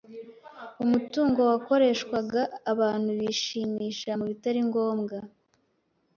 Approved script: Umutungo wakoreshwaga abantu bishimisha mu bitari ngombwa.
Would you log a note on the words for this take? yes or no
no